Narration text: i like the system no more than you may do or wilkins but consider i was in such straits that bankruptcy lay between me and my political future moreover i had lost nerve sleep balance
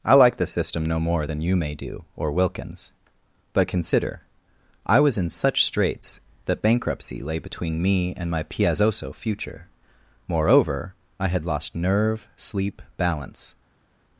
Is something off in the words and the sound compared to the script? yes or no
yes